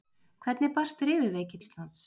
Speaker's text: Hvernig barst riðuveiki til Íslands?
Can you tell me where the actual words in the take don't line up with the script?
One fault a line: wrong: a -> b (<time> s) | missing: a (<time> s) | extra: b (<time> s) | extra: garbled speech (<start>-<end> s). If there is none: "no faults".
missing: til (1.6 s)